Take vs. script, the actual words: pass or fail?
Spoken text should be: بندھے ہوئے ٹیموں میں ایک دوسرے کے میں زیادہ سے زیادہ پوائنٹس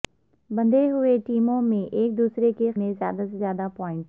pass